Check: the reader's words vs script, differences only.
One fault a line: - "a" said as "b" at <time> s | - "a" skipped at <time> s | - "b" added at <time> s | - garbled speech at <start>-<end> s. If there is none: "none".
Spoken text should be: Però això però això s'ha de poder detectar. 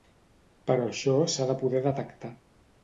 - "però això" skipped at 1.2 s